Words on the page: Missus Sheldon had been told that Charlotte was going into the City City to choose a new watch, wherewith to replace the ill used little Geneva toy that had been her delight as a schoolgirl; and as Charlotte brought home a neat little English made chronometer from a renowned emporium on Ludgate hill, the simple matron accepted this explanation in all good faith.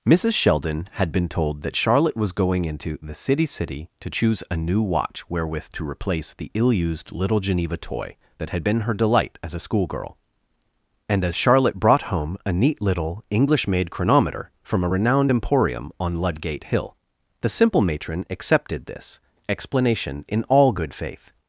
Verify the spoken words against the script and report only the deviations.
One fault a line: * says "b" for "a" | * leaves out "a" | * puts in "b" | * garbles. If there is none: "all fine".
all fine